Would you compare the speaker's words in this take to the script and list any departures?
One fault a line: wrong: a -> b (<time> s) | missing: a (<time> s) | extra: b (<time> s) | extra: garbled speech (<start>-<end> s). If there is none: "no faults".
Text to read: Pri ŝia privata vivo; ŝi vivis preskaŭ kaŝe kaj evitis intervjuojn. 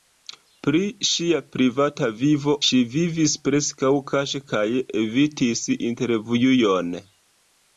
no faults